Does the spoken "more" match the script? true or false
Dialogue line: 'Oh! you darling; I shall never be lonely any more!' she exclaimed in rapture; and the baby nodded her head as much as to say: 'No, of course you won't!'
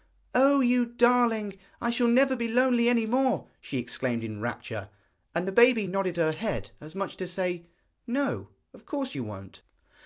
true